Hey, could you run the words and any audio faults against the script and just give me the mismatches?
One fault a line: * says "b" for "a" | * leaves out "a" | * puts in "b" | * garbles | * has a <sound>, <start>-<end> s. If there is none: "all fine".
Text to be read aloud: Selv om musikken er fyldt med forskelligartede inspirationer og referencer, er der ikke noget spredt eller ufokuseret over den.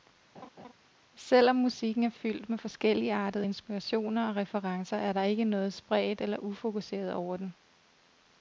* has a laugh, 0.3-0.7 s